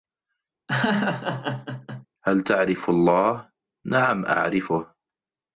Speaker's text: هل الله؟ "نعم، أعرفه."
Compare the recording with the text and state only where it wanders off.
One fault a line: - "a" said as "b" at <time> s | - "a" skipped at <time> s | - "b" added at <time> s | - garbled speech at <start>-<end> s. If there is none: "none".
- "تعرف" added at 2.4 s